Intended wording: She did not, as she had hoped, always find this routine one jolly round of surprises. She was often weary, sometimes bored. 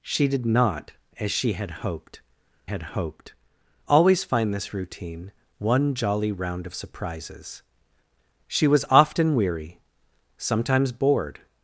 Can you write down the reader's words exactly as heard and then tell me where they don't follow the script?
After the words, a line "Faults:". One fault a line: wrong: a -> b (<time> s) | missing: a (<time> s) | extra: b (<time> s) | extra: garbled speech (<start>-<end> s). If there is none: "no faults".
She did not, as she had hoped had hoped, always find this routine one jolly round of surprises. She was often weary, sometimes bored.
Faults:
extra: had hoped (2.6 s)